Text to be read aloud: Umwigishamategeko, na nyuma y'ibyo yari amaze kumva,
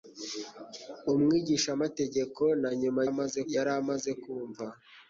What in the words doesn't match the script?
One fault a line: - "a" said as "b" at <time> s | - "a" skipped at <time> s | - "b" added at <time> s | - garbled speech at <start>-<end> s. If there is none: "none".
- "y'ibyo" said as "amaze" at 3.1 s